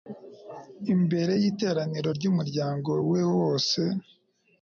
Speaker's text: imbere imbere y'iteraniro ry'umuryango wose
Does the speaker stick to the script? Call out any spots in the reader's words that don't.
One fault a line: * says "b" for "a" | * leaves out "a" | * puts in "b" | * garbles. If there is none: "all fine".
* leaves out "imbere"
* puts in "we"